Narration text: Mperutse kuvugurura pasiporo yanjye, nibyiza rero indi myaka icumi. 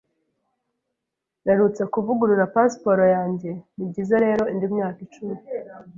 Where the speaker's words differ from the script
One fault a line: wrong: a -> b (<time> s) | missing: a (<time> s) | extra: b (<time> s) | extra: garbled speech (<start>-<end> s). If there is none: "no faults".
no faults